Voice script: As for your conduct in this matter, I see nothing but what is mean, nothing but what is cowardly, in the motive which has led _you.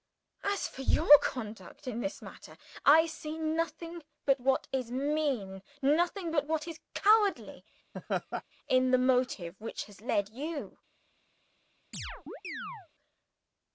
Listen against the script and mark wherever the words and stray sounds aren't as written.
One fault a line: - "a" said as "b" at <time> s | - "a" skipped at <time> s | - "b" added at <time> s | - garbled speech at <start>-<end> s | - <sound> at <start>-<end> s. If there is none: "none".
- laugh at 7.9-8.4 s
- chirp at 11.9-12.9 s